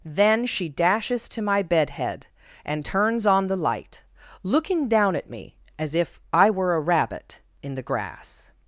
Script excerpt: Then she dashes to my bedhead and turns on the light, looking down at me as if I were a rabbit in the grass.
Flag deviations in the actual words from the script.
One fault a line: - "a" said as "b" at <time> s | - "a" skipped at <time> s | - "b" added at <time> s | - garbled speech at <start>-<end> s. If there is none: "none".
none